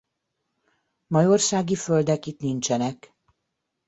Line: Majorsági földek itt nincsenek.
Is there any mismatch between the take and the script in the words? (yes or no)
no